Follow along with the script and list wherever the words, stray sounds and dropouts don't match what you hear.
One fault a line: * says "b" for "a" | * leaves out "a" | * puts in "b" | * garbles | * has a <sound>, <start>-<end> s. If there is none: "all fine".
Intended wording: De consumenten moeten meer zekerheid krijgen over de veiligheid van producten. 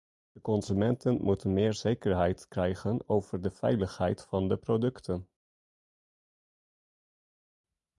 * puts in "de"